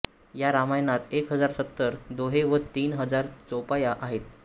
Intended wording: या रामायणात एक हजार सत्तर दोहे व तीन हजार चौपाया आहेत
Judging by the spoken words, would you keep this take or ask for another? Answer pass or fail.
pass